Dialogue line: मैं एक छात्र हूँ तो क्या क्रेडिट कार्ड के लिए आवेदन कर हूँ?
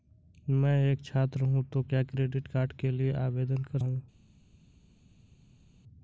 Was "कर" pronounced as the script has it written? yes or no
yes